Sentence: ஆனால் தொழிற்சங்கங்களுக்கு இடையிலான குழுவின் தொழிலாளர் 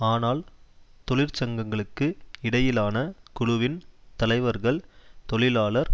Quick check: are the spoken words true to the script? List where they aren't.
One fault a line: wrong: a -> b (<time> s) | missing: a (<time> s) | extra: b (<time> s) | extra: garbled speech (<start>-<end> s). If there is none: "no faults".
extra: தலைவர்கள் (4.2 s)